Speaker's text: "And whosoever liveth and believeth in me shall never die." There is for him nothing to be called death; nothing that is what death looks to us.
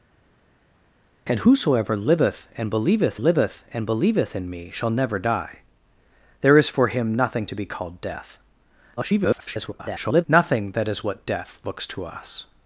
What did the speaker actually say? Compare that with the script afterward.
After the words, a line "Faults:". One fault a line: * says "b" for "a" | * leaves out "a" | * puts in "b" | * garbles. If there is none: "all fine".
"And whosoever liveth and believeth liveth and believeth in me shall never die." There is for him nothing to be called death; [garbled] nothing that is what death looks to us.
Faults:
* puts in "liveth and believeth"
* garbles